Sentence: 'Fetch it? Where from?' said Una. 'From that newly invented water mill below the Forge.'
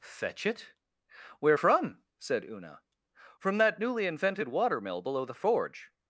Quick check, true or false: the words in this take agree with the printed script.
true